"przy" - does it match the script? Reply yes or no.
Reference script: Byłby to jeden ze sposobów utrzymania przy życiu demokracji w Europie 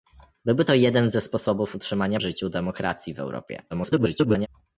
no